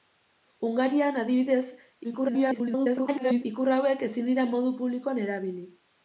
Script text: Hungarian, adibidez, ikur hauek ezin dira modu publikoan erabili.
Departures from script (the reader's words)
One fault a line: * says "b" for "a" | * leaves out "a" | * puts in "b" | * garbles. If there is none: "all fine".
* garbles